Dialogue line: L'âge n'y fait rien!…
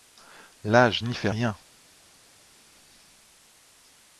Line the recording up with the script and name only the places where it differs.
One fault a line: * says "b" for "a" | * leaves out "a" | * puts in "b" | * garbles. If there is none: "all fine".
all fine